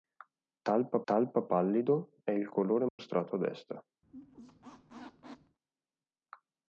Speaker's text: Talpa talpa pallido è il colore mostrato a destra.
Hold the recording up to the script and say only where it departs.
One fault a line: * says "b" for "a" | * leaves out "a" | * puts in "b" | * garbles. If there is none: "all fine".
all fine